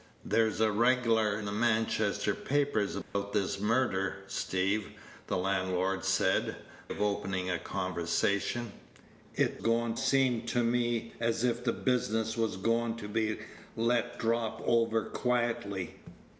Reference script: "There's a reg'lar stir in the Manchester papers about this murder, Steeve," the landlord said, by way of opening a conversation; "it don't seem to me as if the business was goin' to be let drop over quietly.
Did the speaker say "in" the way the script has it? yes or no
no